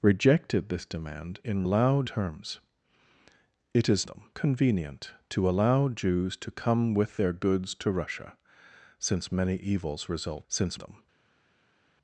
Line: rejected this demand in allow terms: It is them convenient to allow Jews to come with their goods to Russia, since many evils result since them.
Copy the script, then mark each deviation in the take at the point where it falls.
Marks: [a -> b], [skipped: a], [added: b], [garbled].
rejected this demand in allow terms: It is them convenient to allow Jews to come with their goods to Russia, since many evils result since them.